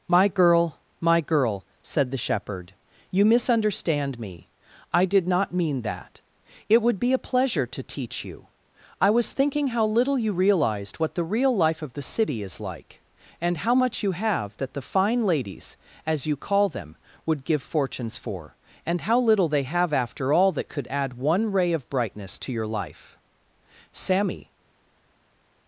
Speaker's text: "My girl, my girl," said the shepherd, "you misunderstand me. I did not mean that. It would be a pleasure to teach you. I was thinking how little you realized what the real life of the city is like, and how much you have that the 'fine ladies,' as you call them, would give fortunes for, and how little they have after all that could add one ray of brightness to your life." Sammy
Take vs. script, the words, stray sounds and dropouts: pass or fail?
pass